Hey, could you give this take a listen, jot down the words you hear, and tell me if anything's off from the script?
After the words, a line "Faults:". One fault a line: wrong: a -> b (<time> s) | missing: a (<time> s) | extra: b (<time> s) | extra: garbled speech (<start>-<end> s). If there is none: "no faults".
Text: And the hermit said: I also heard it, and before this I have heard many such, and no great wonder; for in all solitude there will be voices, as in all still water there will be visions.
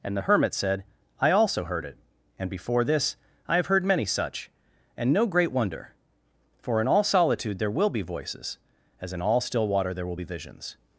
And the hermit said: I also heard it, and before this I have heard many such, and no great wonder; for in all solitude there will be voices, as in all still water there will be visions.
Faults:
no faults